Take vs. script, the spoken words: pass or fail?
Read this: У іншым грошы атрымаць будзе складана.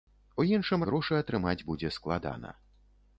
pass